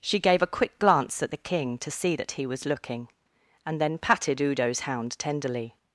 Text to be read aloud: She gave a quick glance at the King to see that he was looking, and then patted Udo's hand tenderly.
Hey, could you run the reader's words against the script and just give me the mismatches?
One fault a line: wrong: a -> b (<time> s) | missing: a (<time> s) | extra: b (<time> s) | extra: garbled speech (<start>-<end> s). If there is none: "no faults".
wrong: hand -> hound (4.8 s)